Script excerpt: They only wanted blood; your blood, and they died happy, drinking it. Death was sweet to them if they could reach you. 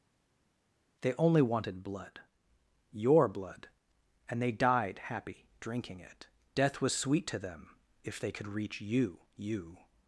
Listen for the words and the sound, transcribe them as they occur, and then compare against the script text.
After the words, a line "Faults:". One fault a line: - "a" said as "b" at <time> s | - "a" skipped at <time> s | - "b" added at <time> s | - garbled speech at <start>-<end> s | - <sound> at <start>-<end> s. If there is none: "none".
They only wanted blood; your blood, and they died happy, drinking it. Death was sweet to them if they could reach you you.
Faults:
- "you" added at 9.4 s